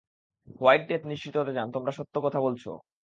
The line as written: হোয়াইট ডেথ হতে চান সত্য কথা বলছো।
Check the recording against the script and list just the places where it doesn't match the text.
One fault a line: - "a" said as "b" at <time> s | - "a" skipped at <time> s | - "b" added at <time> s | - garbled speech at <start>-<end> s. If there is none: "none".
- "নিশ্চিত" added at 1.1 s
- "তোমরা" added at 1.7 s